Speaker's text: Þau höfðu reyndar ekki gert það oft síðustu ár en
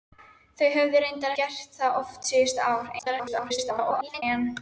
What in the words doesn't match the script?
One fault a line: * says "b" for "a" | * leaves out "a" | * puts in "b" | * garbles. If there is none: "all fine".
* leaves out "ekki"
* garbles